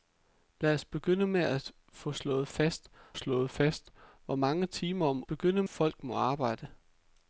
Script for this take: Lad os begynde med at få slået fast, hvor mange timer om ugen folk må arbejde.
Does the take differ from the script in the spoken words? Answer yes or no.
yes